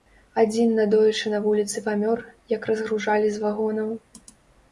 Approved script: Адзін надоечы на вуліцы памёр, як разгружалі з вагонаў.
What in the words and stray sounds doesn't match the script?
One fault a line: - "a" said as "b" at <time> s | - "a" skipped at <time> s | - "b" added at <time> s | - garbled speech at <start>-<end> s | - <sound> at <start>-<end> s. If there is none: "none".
none